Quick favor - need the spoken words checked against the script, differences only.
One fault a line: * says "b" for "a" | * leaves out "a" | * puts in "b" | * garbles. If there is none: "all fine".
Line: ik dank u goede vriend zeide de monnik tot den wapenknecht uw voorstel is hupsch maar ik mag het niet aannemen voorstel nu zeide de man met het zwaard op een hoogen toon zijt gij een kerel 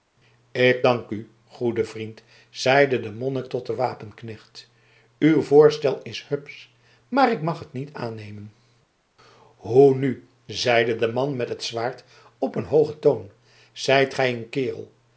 * says "hoe" for "voorstel"